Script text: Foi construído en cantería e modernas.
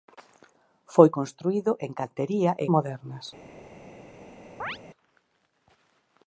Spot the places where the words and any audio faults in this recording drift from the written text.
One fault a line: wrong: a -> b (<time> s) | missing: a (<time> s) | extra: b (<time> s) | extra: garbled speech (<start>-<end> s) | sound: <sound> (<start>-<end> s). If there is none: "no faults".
sound: chirp (4.6-4.8 s)